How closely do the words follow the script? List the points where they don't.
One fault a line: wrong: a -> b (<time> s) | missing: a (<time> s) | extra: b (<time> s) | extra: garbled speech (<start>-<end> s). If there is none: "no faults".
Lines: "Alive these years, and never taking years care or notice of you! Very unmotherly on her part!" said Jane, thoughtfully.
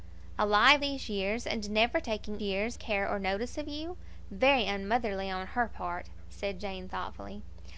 no faults